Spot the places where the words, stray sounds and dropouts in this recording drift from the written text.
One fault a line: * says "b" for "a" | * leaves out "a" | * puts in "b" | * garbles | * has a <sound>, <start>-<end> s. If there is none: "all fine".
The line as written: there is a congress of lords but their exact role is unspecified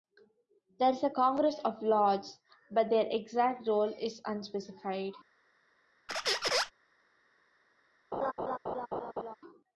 * has a squeak, 6.1-6.7 s
* has a laugh, 8.1-9.4 s